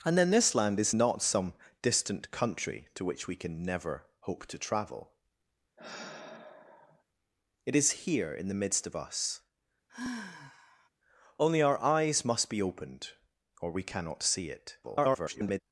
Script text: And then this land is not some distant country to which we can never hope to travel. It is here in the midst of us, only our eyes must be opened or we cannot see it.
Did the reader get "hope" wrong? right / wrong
right